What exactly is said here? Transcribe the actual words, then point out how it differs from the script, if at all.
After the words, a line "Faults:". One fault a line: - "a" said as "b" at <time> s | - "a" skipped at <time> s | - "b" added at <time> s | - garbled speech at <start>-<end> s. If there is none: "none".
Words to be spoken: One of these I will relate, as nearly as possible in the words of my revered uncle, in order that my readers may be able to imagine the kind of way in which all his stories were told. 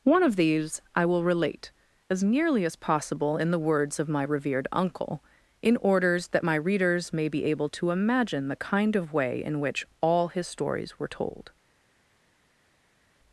One of these I will relate, as nearly as possible in the words of my revered uncle, in orders that my readers may be able to imagine the kind of way in which all his stories were told.
Faults:
- "order" said as "orders" at 5.8 s